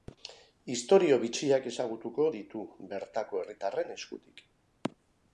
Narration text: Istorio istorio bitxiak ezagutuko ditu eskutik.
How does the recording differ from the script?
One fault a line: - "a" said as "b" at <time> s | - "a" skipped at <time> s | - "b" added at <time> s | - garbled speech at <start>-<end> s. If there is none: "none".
- "istorio" skipped at 1.2 s
- "bertako herritarren" added at 2.9 s